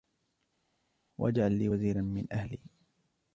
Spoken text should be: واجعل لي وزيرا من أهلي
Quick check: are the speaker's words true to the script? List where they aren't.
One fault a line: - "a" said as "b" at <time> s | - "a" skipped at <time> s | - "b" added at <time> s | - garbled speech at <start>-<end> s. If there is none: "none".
none